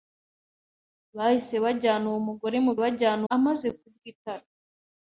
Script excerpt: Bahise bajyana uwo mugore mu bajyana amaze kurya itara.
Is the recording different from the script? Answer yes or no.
no